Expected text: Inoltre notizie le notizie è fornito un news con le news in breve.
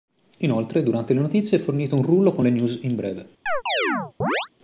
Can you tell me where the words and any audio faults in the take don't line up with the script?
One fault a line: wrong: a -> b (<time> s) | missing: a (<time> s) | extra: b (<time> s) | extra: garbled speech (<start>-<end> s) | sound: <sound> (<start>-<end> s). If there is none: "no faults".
wrong: notizie -> durante (0.8 s)
wrong: news -> rullo (2.0 s)
sound: chirp (3.5-4.5 s)